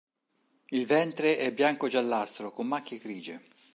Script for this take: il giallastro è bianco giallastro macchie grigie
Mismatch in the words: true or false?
true